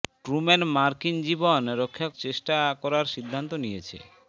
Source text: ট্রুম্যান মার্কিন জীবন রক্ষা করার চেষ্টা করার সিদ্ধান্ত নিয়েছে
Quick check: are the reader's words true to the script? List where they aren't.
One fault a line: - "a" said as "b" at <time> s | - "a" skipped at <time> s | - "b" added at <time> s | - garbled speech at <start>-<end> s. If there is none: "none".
- "করার" skipped at 2.1 s